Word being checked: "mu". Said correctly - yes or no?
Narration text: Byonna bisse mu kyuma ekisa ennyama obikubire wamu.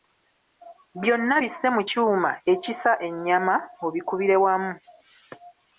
yes